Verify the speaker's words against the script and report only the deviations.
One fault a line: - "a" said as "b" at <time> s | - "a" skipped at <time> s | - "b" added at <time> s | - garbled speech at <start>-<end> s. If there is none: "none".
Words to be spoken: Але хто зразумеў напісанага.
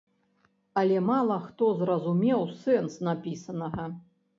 - "мала" added at 1.1 s
- "сэнс" added at 2.6 s